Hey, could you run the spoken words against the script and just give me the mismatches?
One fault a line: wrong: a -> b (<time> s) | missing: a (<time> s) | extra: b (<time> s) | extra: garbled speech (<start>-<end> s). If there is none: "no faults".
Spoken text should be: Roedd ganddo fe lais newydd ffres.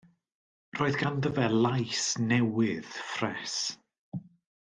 no faults